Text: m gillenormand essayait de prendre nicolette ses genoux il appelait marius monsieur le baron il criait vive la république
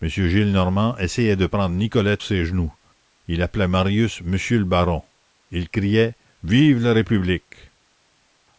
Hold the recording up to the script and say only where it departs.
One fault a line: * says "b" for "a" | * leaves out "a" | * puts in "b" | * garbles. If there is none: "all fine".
all fine